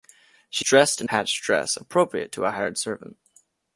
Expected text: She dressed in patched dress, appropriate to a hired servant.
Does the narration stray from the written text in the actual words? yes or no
no